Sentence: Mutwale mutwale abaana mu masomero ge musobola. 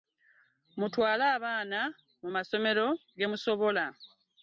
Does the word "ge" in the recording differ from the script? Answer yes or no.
no